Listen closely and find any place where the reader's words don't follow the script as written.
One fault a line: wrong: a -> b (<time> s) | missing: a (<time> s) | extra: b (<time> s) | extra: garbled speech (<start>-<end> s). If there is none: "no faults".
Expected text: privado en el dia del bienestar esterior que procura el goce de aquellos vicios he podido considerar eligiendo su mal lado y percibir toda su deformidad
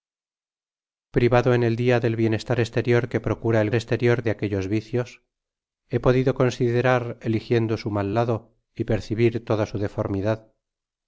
wrong: goce -> esterior (3.7 s)